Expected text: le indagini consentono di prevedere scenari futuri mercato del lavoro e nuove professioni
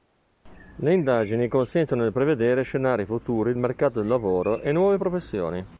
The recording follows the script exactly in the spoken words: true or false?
true